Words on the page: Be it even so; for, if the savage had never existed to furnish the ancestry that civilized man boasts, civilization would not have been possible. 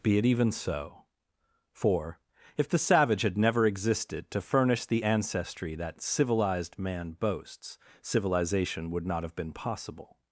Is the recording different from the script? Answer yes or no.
no